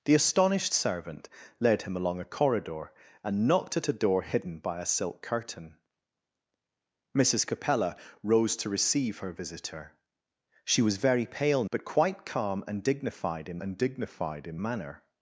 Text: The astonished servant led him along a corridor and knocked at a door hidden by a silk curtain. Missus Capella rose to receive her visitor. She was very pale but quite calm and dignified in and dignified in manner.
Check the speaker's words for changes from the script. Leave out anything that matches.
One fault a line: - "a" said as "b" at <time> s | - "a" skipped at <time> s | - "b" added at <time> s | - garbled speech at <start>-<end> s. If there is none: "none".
none